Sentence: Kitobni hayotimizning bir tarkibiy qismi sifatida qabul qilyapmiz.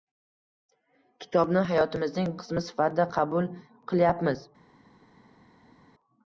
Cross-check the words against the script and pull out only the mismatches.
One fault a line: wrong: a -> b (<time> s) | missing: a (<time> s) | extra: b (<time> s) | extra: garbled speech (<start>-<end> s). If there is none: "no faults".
missing: bir tarkibiy (2.3 s)